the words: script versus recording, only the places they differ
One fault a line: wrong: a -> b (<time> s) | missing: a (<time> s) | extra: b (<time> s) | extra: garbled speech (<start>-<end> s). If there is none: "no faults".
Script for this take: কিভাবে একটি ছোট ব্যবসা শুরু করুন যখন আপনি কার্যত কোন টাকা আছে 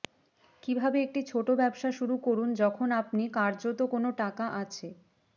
no faults